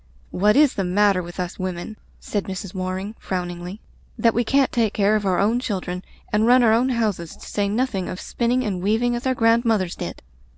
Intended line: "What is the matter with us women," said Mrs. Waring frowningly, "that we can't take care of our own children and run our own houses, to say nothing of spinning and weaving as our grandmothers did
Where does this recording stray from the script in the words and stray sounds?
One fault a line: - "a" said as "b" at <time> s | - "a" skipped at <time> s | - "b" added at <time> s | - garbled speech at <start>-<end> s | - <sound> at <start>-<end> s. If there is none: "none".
none